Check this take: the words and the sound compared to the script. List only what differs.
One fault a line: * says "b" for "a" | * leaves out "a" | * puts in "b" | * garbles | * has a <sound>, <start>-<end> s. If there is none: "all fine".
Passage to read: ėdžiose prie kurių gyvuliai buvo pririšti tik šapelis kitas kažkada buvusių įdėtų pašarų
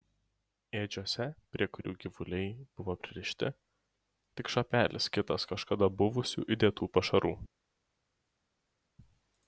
all fine